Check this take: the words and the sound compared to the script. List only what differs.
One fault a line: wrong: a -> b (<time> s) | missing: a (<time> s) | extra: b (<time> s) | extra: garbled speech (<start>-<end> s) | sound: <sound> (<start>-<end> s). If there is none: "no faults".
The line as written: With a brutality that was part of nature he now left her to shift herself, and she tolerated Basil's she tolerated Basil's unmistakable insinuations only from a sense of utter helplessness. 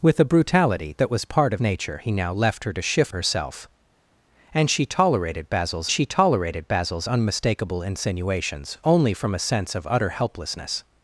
no faults